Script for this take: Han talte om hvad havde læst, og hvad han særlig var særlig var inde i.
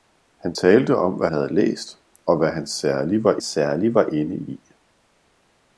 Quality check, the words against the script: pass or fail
pass